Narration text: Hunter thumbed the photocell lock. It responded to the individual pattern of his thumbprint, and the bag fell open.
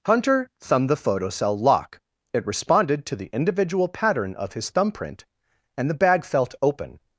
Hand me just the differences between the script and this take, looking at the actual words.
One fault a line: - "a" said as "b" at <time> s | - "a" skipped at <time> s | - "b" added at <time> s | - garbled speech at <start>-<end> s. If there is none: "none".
- "fell" said as "felt" at 6.2 s